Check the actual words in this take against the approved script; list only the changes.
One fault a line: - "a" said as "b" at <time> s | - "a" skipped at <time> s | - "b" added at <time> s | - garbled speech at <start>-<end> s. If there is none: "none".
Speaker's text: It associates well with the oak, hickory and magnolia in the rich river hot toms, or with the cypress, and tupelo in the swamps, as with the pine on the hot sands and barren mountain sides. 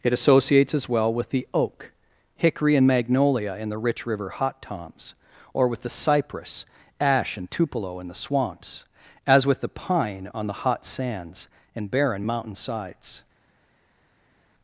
- "as" added at 0.7 s
- "ash" added at 7.0 s